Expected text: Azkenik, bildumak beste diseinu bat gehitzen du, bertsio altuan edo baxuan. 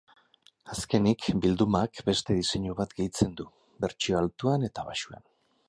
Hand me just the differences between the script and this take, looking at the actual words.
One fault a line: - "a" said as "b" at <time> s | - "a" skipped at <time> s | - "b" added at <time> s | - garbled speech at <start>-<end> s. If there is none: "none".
- "edo" said as "eta" at 4.7 s